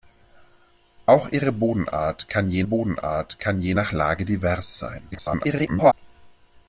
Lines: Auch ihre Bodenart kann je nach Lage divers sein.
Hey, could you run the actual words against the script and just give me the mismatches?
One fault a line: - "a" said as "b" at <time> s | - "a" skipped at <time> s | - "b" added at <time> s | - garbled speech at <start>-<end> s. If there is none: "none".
- "Bodenart kann je" added at 2.6 s
- garbled speech at 5.1-5.9 s